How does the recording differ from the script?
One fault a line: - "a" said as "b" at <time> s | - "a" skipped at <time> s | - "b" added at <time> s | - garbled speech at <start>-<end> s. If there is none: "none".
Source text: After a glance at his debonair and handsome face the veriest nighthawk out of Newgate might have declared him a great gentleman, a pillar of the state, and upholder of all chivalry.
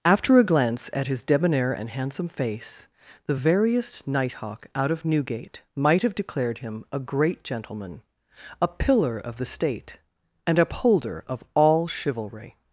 none